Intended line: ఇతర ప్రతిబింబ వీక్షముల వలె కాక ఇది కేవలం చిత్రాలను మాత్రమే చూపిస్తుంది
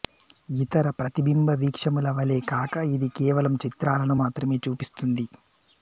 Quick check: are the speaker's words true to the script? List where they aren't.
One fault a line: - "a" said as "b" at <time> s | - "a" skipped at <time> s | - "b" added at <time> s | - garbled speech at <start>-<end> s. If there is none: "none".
none